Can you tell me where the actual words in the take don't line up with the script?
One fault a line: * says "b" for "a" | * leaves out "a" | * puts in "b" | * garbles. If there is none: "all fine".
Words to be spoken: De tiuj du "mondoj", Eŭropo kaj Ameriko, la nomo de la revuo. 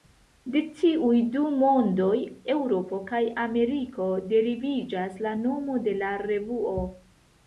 * puts in "deriviĝas"